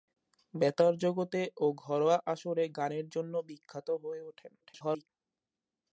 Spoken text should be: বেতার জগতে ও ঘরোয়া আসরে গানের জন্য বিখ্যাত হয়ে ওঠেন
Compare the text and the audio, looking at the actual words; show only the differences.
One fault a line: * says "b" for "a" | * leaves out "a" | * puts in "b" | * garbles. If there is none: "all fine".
* garbles